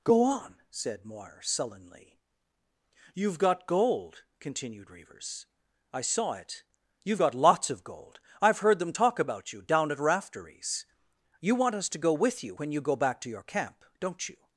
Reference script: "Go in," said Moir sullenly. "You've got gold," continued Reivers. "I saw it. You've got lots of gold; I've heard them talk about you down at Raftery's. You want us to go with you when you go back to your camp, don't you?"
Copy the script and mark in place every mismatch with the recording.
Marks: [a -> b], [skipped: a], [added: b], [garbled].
"Go [in," -> on] said Moir sullenly. "You've got gold," continued Reivers. "I saw it. You've got lots of gold; I've heard them talk about you down at Raftery's. You want us to go with you when you go back to your camp, don't you?"